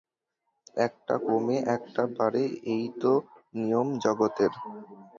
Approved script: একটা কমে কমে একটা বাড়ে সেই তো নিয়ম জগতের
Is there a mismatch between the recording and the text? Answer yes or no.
yes